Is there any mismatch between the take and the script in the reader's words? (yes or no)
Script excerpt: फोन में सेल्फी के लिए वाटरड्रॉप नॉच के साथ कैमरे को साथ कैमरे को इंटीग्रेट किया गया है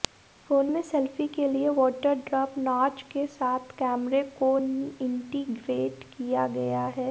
yes